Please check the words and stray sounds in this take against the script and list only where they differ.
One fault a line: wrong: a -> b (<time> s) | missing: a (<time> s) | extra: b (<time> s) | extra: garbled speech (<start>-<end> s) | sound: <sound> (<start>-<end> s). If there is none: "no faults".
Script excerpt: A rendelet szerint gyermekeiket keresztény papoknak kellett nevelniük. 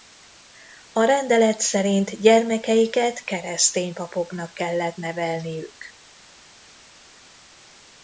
no faults